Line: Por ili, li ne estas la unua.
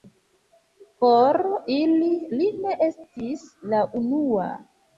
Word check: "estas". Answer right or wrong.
wrong